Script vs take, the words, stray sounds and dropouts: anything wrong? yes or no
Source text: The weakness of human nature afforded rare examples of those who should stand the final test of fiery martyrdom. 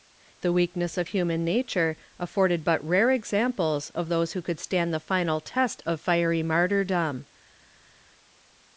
yes